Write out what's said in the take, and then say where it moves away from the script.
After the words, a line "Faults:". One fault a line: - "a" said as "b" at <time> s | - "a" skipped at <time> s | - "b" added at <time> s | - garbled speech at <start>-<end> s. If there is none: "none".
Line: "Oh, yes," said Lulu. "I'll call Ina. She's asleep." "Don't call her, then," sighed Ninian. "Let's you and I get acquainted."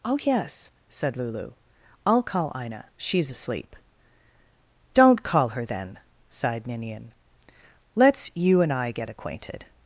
"Oh, yes," said Lulu. "I'll call Ina. She's asleep." "Don't call her, then," sighed Ninian. "Let's you and I get acquainted."
Faults:
none